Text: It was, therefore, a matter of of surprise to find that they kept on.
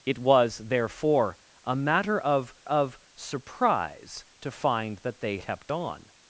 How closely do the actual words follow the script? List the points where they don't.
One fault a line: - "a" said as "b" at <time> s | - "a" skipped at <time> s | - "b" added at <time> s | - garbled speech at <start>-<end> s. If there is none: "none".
none